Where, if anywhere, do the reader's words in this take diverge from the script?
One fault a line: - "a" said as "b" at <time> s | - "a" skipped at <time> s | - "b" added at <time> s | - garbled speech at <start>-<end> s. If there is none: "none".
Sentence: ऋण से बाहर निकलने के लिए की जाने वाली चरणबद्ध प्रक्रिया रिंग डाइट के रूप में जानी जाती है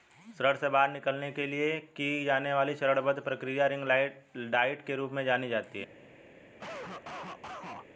none